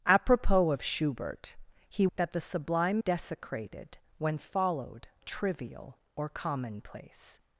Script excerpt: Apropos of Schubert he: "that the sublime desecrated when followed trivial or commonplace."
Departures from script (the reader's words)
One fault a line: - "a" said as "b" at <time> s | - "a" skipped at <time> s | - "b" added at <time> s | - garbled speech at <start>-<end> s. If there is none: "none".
none